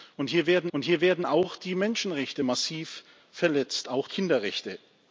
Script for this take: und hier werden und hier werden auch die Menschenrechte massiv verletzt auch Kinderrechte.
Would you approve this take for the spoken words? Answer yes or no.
yes